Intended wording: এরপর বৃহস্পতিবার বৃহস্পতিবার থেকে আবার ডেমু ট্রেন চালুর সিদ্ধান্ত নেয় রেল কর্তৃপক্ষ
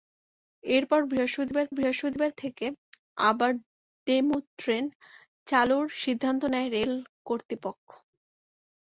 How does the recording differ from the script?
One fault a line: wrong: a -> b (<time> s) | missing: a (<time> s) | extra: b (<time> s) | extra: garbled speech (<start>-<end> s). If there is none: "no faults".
no faults